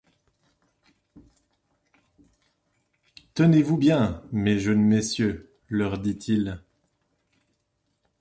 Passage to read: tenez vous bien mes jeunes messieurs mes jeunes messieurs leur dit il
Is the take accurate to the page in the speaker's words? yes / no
no